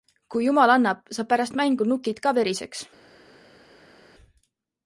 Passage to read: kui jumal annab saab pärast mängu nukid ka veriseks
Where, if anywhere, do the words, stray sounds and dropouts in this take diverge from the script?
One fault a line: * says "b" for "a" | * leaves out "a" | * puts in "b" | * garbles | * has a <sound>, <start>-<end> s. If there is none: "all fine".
all fine